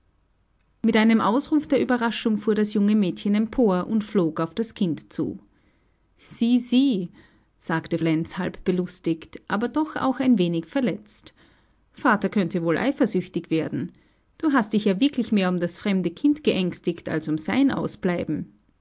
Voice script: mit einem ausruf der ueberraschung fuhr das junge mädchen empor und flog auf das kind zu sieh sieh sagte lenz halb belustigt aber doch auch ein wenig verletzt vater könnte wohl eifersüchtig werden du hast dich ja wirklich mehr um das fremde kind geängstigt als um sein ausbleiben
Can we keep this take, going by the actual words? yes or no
yes